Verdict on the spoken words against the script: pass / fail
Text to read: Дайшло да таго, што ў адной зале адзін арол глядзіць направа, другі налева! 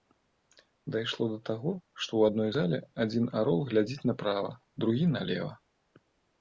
pass